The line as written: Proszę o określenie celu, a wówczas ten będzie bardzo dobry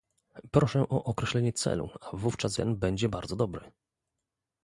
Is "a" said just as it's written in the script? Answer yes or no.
yes